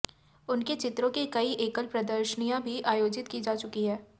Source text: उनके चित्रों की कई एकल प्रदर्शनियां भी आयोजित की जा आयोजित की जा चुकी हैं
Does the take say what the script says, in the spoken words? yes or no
no